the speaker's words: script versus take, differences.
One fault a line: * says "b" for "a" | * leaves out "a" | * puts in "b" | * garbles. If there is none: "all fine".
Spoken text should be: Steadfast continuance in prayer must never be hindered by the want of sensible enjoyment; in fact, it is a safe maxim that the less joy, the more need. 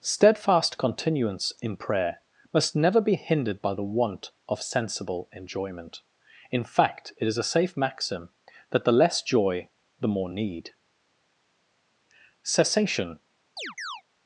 * puts in "Cessation"